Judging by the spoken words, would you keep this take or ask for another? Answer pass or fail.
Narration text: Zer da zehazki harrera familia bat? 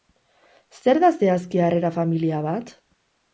pass